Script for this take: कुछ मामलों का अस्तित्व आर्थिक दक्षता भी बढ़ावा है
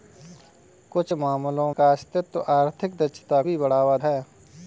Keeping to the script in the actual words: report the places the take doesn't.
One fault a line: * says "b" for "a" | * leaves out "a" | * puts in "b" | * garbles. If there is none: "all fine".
all fine